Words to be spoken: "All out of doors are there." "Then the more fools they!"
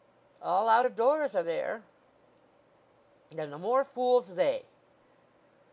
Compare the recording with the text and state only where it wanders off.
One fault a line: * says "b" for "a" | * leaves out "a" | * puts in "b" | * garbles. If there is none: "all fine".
all fine